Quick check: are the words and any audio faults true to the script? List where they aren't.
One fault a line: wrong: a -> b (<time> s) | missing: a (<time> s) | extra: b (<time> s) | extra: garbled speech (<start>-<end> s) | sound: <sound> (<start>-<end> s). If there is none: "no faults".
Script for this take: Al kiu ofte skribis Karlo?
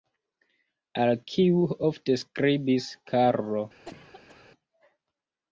sound: cough (3.8-4.5 s)